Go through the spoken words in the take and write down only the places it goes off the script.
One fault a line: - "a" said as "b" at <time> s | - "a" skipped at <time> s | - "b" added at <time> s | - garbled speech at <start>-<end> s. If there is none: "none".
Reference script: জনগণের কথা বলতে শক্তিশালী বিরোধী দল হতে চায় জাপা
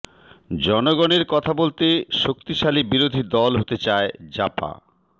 none